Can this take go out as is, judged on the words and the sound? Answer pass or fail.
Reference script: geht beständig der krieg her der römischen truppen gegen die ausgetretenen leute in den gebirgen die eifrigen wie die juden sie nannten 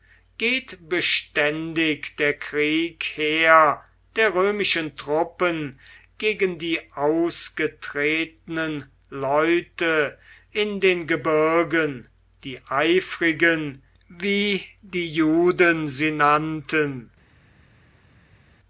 pass